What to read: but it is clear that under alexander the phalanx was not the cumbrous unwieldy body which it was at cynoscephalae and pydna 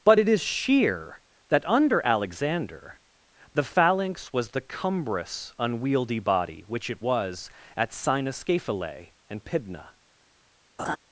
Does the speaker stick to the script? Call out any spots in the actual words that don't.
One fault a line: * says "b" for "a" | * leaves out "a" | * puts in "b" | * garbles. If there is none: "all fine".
* says "sheer" for "clear"
* leaves out "not"